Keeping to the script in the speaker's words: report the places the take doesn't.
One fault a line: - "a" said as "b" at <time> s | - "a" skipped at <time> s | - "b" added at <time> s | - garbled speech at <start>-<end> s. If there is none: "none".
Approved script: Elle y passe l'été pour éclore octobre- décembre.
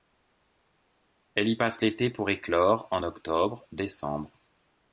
- "en" added at 2.9 s